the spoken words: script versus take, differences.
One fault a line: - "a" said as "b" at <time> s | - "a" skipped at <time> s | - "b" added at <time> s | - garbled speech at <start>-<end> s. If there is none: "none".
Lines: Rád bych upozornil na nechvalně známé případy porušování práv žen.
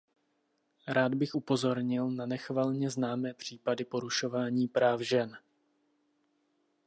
none